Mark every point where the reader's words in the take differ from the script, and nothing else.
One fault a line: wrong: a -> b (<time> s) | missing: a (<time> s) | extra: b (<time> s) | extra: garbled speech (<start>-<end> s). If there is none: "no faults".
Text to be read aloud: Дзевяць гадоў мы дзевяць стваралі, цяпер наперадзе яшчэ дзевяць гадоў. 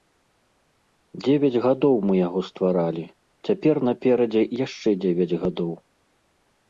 wrong: дзевяць -> яго (2.3 s)